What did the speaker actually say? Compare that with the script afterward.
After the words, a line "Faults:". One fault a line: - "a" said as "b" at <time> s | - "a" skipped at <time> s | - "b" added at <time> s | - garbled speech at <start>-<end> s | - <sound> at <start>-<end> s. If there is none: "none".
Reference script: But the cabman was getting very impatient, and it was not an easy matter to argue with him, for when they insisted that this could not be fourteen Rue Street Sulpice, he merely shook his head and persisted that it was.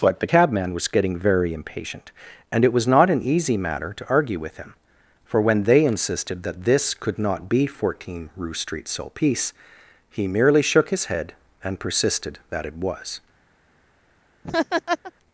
But the cabman was getting very impatient, and it was not an easy matter to argue with him, for when they insisted that this could not be fourteen Rue Street Sulpice, he merely shook his head and persisted that it was.
Faults:
- laugh at 14.4-15.1 s